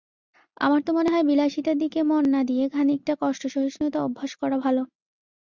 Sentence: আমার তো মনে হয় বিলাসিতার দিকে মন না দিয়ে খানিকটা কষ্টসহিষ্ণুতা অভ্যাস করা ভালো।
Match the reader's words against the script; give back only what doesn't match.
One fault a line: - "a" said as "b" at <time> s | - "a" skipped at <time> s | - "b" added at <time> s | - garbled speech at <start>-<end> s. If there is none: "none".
none